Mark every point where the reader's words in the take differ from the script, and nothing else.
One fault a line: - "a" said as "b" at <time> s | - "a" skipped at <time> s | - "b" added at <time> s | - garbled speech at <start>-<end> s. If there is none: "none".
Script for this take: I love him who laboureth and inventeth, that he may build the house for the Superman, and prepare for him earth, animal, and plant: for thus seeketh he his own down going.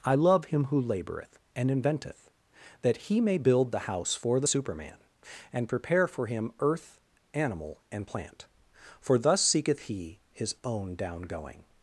none